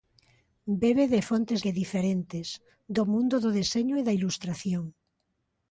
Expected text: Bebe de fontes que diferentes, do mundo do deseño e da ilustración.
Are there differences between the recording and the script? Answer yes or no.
no